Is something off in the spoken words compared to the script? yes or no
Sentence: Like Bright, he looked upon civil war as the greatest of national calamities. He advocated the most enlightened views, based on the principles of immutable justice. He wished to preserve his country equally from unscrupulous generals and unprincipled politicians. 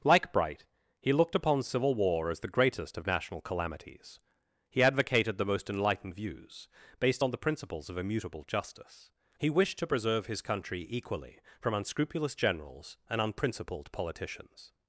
no